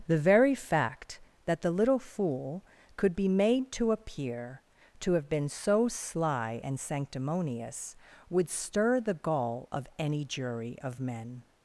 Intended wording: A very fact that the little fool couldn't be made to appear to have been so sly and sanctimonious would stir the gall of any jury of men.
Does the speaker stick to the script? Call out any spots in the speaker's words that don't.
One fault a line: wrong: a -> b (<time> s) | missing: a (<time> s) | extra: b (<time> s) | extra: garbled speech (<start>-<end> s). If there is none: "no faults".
wrong: A -> The (0.1 s)
wrong: couldn't -> could (3.0 s)